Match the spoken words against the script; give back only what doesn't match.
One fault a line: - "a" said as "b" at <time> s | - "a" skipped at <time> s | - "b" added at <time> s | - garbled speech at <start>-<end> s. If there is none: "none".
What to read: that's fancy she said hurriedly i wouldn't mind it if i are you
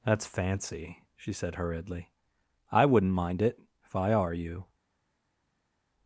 none